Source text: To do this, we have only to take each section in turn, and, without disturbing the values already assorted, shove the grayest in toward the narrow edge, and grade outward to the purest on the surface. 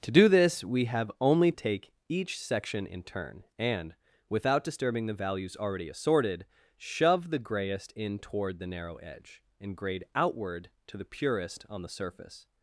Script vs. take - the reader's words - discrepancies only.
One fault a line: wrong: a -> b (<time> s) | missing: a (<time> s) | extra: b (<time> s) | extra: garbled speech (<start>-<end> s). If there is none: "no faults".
missing: to (1.5 s)